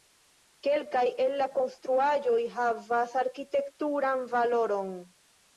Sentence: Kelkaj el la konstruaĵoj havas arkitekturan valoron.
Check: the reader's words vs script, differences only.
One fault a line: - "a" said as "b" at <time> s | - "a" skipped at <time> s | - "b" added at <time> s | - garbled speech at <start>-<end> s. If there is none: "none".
none